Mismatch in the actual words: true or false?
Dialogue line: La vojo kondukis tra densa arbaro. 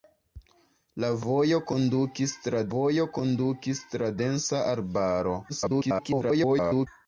true